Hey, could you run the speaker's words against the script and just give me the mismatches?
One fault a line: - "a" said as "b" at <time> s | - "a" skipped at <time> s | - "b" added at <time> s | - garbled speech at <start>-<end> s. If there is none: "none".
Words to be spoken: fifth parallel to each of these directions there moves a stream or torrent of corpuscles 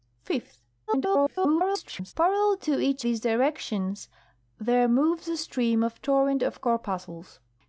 - garbled speech at 0.9-2.1 s
- "of" skipped at 3.0 s